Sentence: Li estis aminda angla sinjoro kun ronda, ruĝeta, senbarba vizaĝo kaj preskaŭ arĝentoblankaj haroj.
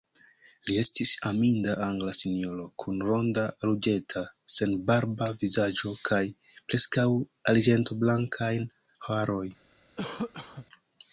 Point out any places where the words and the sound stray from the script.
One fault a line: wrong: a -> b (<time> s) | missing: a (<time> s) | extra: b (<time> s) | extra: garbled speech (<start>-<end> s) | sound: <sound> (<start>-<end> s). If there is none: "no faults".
sound: cough (10.0-10.7 s)